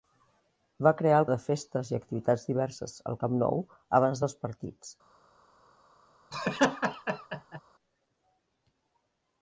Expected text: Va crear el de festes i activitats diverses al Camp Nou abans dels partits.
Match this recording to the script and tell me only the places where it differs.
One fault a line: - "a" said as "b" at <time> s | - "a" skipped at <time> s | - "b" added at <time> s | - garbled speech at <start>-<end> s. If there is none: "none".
none